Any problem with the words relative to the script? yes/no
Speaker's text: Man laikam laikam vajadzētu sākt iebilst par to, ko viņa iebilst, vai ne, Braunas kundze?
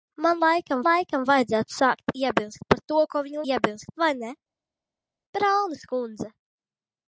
no